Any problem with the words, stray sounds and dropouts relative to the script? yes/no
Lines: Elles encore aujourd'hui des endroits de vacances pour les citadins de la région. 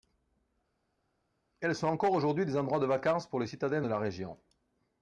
yes